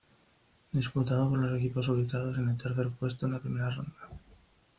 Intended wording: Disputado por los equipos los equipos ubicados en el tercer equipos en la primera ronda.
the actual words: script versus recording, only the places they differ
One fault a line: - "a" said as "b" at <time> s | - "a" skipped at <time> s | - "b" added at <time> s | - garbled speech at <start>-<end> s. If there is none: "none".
- "los equipos" skipped at 1.9 s
- "equipos" said as "puesto" at 3.0 s